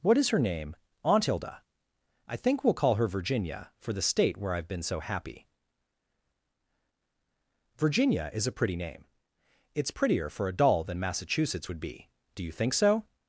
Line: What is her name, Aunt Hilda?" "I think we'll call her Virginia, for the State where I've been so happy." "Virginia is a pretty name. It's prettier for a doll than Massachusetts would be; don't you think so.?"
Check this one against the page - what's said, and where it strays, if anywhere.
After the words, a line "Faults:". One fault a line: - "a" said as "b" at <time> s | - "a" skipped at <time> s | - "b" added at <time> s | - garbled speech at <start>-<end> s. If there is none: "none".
What is her name, Aunt Hilda?" "I think we'll call her Virginia, for the State where I've been so happy." "Virginia is a pretty name. It's prettier for a doll than Massachusetts would be; do you think so.?"
Faults:
- "don't" said as "do" at 12.3 s